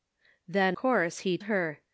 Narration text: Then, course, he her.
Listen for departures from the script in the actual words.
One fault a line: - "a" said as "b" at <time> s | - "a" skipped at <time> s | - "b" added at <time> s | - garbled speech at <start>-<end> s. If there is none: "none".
none